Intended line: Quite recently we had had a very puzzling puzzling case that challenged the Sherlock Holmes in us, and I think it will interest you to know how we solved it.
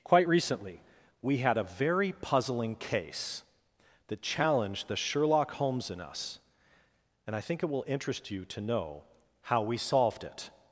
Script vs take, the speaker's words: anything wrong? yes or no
yes